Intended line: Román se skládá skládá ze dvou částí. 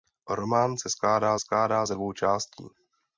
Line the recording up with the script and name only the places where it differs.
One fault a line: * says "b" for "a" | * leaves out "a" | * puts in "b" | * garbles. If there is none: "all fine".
all fine